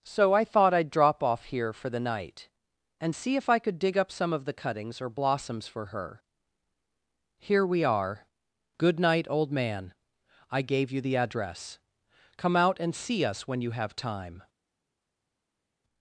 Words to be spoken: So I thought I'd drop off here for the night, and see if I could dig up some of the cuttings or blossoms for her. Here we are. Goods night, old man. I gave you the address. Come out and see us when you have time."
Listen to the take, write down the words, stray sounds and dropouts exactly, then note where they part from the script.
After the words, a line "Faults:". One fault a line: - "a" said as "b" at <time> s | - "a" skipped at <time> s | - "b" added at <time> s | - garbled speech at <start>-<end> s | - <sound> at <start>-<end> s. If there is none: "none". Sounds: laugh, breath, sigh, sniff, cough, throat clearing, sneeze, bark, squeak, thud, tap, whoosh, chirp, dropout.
So I thought I'd drop off here for the night, and see if I could dig up some of the cuttings or blossoms for her. Here we are. Good night, old man. I gave you the address. Come out and see us when you have time."
Faults:
- "Goods" said as "Good" at 8.8 s